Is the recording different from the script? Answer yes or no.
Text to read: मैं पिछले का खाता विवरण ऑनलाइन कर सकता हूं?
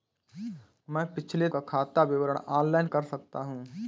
no